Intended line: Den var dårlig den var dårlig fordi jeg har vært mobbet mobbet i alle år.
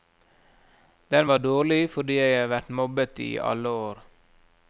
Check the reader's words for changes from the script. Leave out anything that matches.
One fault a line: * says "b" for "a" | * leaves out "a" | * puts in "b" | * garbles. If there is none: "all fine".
* leaves out "den var dårlig"
* leaves out "mobbet"